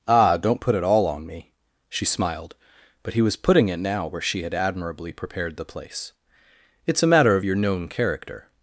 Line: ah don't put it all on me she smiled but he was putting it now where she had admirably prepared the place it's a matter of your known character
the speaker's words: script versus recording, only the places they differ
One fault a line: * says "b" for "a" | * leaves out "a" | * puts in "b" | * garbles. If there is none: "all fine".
all fine